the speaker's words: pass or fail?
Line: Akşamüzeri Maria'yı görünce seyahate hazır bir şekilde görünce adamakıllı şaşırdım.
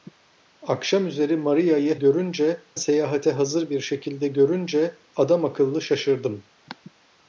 pass